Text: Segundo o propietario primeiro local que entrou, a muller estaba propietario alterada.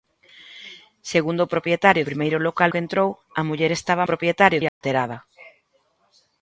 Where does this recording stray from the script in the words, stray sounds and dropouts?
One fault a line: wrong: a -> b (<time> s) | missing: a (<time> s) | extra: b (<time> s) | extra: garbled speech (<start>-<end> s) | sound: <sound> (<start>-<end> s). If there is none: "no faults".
sound: dropout (4.7-4.8 s)